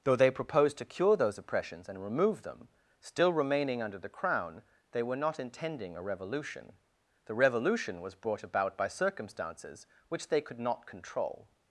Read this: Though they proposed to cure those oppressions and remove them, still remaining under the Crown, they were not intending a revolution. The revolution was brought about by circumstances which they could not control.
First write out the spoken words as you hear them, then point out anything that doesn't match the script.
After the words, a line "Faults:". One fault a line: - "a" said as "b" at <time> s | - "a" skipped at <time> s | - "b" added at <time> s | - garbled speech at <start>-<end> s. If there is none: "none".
Though they proposed to cure those oppressions and remove them, still remaining under the Crown, they were not intending a revolution. The revolution was brought about by circumstances which they could not control.
Faults:
none